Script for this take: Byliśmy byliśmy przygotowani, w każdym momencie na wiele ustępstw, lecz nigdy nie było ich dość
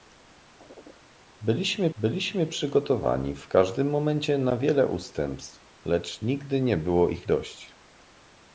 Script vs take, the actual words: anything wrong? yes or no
no